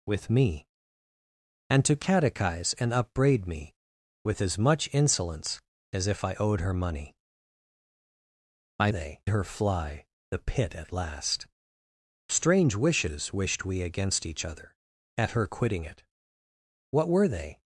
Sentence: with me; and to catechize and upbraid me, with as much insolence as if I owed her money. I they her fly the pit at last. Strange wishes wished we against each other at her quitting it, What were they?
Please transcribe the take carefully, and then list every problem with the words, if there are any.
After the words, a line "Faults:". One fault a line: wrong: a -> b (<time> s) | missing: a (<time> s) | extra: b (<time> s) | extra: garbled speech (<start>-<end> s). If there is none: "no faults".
with me; and to catechize and upbraid me, with as much insolence as if I owed her money. I they her fly the pit at last. Strange wishes wished we against each other at her quitting it, What were they?
Faults:
no faults